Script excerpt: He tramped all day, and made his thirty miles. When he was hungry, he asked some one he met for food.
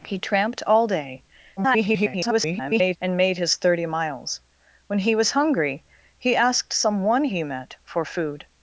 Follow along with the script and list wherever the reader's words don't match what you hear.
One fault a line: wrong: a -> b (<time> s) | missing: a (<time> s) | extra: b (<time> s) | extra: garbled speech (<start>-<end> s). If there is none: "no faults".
extra: garbled speech (1.6-3.0 s)